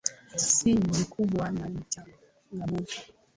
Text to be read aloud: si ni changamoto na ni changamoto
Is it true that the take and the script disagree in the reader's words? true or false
true